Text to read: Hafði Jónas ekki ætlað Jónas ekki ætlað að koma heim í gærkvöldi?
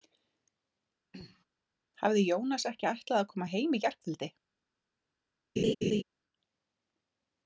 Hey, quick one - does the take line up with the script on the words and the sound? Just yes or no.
no